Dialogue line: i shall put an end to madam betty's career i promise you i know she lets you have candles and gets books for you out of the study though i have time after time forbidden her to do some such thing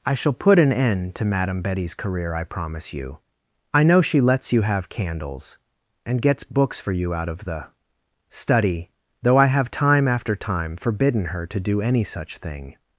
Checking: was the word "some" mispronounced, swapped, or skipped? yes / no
yes